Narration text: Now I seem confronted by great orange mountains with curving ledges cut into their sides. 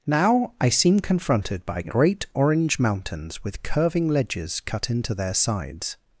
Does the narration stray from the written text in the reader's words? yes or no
no